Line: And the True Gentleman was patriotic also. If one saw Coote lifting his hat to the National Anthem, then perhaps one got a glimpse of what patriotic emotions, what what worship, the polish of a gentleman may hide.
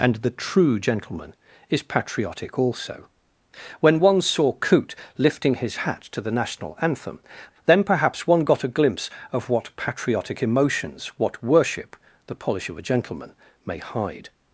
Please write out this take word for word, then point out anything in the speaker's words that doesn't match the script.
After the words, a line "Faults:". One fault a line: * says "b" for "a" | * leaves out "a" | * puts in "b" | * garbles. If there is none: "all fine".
And the True Gentleman is patriotic also. When one saw Coote lifting his hat to the National Anthem, then perhaps one got a glimpse of what patriotic emotions, what worship, the polish of a gentleman may hide.
Faults:
* says "is" for "was"
* says "When" for "If"
* leaves out "what"